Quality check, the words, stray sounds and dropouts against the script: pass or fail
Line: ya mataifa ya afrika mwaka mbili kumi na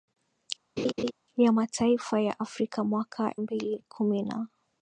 fail